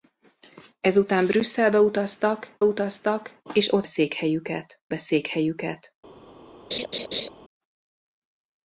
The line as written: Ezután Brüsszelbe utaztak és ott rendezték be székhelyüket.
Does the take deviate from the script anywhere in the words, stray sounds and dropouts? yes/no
yes